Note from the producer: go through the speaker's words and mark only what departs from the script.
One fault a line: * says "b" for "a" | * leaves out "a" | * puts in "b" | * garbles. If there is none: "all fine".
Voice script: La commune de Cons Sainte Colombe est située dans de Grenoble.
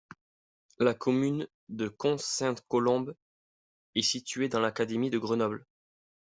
* puts in "l'académie"